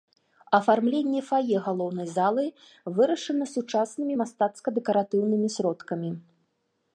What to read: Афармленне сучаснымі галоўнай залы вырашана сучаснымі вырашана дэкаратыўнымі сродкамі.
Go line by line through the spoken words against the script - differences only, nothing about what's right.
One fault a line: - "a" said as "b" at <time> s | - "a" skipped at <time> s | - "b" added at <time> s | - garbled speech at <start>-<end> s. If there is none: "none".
- "сучаснымі" said as "фае" at 1.3 s
- "вырашана" said as "мастацка" at 4.2 s